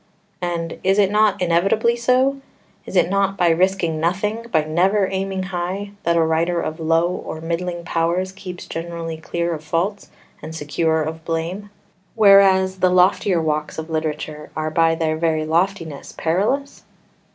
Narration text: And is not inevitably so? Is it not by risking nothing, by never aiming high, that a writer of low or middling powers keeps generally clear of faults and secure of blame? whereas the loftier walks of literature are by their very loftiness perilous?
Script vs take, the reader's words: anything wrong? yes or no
yes